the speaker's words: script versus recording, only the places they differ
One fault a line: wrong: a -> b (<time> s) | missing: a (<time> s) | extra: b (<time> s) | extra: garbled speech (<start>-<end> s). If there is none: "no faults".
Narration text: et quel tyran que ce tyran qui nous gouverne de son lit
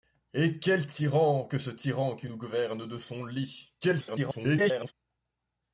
extra: garbled speech (3.8-4.9 s)